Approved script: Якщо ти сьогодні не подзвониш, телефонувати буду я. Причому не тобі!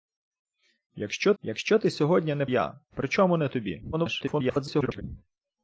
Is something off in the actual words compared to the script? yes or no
yes